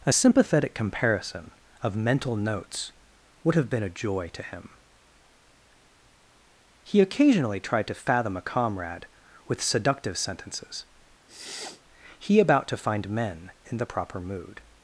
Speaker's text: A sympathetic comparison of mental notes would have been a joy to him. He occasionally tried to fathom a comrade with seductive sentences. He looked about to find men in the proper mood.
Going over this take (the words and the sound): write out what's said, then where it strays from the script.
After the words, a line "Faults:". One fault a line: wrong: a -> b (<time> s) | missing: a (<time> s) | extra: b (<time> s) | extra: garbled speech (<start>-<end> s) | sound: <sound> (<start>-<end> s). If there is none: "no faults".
A sympathetic comparison of mental notes would have been a joy to him. He occasionally tried to fathom a comrade with seductive sentences. He about to find men in the proper mood.
Faults:
sound: sniff (11.3-11.8 s)
missing: looked (12.4 s)